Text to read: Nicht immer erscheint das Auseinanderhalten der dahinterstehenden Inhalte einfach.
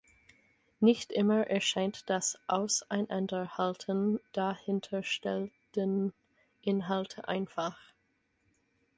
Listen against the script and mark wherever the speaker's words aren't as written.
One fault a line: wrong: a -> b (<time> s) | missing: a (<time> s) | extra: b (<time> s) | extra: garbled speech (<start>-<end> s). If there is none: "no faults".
missing: der (4.2 s)